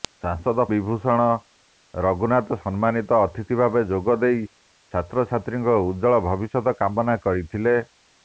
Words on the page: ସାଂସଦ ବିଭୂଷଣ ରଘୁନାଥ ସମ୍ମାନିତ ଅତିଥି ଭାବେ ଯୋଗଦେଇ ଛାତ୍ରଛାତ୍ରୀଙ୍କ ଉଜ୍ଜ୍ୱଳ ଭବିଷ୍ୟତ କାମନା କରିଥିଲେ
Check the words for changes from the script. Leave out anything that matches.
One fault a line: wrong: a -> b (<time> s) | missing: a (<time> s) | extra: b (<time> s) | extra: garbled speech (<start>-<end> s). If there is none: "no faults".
no faults